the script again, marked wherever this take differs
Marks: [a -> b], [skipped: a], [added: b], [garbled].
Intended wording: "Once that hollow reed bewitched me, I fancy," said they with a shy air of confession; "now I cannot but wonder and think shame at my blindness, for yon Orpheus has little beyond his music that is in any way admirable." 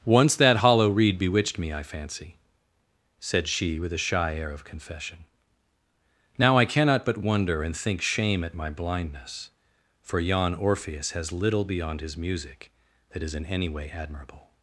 "Once that hollow reed bewitched me, I fancy," said [they -> she] with a shy air of confession; "now I cannot but wonder and think shame at my blindness, for yon Orpheus has little beyond his music that is in any way admirable."